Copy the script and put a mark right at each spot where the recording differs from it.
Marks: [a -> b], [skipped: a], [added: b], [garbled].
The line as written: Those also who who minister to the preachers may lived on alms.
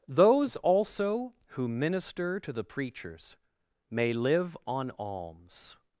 Those also who [skipped: who] minister to the preachers may [lived -> live] on alms.